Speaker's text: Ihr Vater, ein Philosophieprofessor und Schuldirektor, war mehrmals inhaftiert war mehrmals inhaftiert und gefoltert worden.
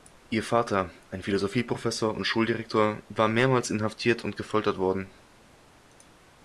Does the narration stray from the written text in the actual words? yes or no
yes